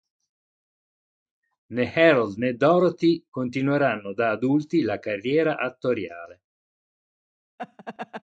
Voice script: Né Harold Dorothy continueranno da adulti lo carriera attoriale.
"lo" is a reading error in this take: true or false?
true